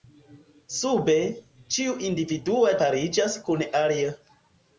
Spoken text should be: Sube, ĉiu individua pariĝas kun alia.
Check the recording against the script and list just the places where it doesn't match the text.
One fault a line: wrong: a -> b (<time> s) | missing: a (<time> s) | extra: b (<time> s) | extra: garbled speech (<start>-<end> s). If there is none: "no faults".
no faults